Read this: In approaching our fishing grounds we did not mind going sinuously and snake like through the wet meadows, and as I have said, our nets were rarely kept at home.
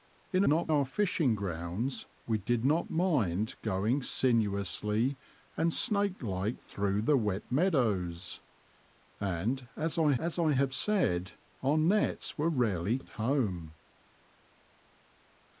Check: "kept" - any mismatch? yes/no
yes